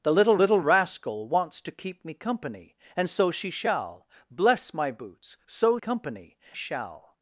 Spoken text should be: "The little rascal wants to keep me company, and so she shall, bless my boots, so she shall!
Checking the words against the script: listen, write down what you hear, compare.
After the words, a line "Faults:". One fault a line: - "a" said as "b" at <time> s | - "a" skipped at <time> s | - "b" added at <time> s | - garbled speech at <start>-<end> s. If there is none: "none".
"The little little rascal wants to keep me company, and so she shall, bless my boots, so company shall!
Faults:
- "little" added at 0.4 s
- "she" said as "company" at 5.8 s